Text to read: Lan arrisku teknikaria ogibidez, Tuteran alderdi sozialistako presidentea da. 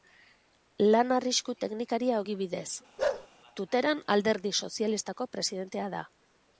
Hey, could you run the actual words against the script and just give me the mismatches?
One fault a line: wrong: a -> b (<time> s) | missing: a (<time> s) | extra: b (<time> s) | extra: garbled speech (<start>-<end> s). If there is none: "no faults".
no faults